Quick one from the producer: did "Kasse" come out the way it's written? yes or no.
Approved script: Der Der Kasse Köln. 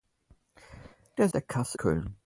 yes